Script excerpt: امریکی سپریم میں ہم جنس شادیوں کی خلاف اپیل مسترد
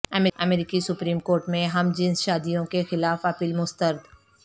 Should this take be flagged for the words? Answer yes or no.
yes